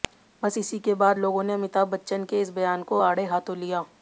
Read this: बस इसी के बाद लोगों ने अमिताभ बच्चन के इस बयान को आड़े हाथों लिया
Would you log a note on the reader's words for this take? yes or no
no